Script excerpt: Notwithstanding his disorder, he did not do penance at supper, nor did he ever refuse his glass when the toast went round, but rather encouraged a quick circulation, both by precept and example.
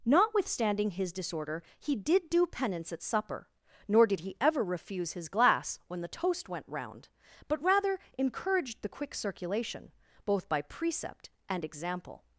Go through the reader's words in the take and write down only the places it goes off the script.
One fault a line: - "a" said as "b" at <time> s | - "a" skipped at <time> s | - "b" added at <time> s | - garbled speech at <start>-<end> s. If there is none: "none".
- "not" skipped at 2.3 s
- "a" said as "the" at 8.8 s